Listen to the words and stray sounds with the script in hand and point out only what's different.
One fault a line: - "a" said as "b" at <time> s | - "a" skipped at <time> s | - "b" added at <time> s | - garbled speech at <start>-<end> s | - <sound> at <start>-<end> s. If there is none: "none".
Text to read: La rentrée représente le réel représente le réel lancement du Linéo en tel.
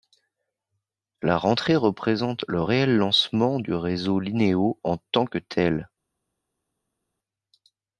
- "représente le réel" skipped at 3.0 s
- "réseau" added at 3.7 s
- "tant que" added at 5.1 s